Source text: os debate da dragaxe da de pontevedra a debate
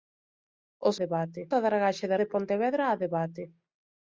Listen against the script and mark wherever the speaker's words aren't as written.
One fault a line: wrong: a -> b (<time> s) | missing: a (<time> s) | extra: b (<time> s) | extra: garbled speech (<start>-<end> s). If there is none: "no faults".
no faults